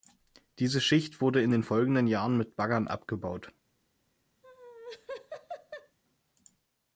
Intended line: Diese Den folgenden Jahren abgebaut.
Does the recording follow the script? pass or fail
fail